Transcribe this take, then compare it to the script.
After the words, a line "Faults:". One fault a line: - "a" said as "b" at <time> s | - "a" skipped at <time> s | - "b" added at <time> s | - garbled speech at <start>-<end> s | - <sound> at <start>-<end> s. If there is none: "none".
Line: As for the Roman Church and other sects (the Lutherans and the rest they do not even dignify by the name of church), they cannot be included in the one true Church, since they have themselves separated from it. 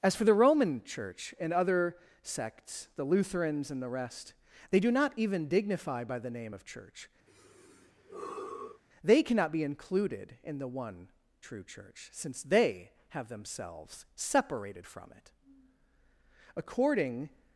As for the Roman Church and other sects (the Lutherans and the rest they do not even dignify by the name of church), they cannot be included in the one true Church, since they have themselves separated from it. According
Faults:
- sigh at 7.3-8.8 s
- "According" added at 16.5 s